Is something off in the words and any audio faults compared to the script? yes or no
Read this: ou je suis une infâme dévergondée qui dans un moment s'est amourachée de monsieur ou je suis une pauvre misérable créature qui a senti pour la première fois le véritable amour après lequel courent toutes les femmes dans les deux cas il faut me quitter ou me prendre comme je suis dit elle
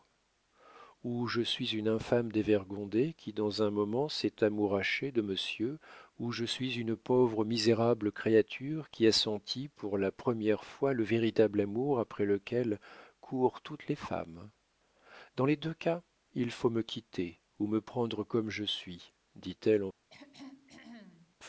yes